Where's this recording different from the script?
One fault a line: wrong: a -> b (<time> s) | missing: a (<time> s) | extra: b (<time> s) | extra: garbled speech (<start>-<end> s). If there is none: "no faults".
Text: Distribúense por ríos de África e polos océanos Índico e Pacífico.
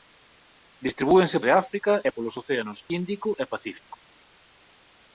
missing: por ríos (1.4 s)